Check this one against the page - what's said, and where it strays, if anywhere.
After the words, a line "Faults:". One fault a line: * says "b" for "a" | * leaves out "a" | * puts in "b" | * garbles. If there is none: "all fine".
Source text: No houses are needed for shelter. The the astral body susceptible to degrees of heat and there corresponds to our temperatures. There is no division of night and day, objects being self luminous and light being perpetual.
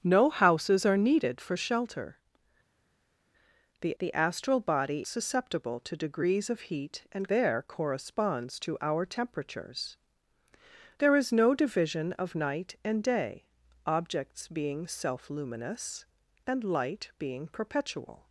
No houses are needed for shelter. The the astral body susceptible to degrees of heat and there corresponds to our temperatures. There is no division of night and day, objects being self luminous and light being perpetual.
Faults:
all fine